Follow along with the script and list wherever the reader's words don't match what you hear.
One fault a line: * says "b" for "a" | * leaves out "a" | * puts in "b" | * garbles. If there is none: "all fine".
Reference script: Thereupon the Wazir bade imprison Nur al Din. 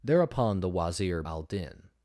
* leaves out "bade imprison Nur"